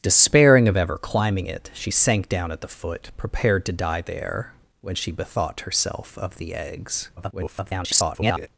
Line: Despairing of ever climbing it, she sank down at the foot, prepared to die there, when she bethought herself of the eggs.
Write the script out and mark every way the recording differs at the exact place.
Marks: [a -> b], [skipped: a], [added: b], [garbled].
Despairing of ever climbing it, she sank down at the foot, prepared to die there, when she bethought herself of the eggs. [garbled]